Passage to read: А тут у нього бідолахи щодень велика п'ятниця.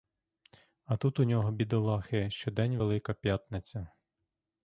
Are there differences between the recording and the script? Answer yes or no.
no